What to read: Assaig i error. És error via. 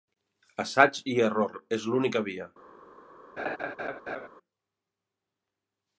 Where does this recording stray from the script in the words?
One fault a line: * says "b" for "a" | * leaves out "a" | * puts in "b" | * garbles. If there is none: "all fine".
* says "l'única" for "error"